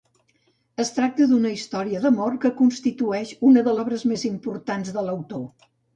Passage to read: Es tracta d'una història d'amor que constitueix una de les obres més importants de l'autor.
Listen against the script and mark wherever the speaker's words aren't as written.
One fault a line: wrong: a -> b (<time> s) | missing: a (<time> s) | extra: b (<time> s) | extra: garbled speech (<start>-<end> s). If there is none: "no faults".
missing: les (3.8 s)